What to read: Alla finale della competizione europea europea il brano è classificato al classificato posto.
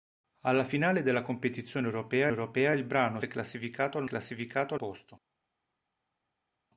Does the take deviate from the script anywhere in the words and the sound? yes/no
no